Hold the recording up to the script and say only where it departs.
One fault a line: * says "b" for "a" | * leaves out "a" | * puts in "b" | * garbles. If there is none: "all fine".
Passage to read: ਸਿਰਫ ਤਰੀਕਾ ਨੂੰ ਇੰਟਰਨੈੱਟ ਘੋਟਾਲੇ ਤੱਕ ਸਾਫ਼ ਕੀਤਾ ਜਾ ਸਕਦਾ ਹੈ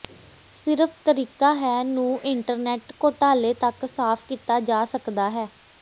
* puts in "ਹੈ"